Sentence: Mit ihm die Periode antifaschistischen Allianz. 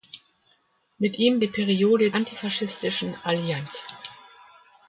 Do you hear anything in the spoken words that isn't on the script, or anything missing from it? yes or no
no